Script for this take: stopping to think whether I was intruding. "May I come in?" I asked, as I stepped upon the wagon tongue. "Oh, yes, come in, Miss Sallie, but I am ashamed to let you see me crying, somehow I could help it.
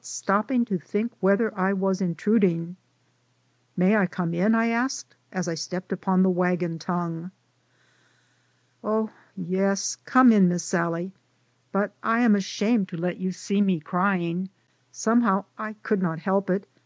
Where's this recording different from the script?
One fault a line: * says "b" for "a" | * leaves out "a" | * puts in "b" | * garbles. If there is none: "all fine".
* puts in "not"